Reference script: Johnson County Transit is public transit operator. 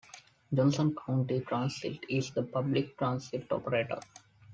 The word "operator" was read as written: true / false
true